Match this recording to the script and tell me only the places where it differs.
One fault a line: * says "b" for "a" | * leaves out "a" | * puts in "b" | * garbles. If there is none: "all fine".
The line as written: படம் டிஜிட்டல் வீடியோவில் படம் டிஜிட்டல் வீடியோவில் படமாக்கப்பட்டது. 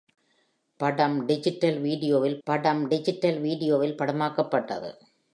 all fine